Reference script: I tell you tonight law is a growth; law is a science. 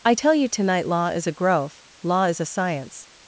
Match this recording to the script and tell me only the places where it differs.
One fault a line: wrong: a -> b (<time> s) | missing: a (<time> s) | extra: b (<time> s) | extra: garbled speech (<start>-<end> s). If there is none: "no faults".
no faults